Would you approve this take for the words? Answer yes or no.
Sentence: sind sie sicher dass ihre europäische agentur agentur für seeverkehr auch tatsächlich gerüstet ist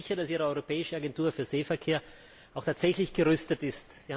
no